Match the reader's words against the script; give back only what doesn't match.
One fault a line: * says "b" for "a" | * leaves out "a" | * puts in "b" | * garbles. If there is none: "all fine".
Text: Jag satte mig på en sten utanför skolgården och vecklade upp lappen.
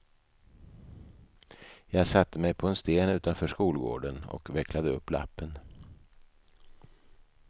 all fine